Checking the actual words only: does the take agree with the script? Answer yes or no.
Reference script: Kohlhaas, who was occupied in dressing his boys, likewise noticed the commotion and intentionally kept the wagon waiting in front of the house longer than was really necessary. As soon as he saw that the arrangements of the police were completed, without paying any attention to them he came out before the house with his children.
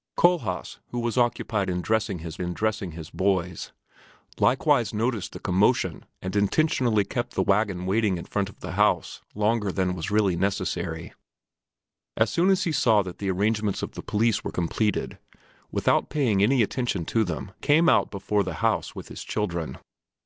no